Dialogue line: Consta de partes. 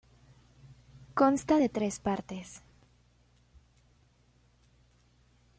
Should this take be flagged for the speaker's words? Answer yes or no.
yes